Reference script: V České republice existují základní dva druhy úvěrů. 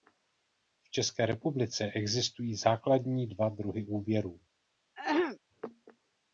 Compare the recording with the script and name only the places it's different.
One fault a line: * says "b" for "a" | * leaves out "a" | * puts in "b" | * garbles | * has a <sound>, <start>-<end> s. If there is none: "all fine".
* has a throat clearing, 5.0-5.4 s